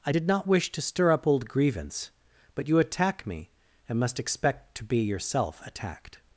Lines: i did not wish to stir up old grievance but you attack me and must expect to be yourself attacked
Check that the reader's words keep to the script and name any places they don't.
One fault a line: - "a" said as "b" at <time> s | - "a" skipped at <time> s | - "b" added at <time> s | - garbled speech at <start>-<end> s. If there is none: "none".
none